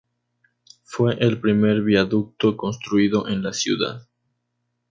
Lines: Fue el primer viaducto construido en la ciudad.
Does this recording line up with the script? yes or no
yes